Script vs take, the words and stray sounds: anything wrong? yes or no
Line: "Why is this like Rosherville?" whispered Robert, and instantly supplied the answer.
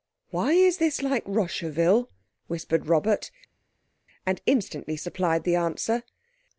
no